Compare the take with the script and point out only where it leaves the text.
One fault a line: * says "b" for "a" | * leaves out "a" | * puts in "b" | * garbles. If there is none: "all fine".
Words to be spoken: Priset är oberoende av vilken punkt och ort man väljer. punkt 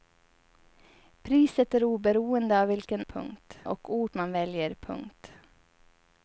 all fine